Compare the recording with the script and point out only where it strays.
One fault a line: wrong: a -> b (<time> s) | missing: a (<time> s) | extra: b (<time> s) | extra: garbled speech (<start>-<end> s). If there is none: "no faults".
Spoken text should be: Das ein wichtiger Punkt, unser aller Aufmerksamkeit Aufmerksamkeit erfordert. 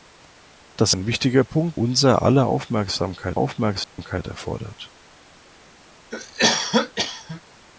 no faults